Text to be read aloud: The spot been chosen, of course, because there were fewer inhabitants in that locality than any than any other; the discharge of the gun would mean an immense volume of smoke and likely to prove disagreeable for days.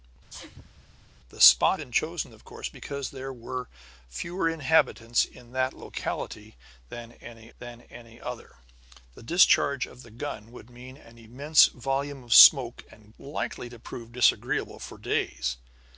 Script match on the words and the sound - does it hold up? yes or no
no